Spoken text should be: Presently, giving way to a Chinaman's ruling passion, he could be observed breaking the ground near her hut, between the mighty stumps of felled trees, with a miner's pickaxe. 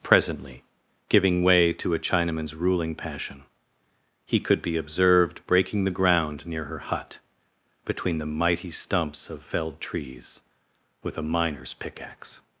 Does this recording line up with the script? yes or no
yes